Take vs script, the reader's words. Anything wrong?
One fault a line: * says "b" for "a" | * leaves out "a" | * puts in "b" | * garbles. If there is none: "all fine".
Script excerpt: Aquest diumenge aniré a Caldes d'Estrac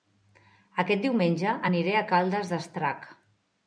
all fine